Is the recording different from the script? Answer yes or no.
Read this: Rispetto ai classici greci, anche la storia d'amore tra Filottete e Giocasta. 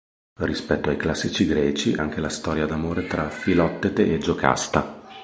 no